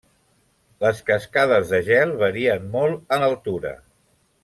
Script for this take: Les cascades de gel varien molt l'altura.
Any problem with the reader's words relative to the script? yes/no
no